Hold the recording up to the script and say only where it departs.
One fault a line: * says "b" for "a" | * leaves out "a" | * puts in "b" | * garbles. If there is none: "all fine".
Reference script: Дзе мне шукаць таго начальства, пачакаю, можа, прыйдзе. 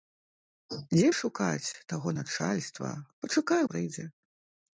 * leaves out "мне"
* leaves out "можа"